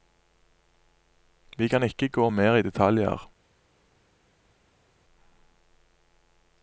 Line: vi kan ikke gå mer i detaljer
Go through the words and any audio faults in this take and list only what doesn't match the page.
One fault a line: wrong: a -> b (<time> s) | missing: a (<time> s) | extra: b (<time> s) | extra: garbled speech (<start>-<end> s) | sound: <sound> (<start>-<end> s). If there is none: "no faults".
no faults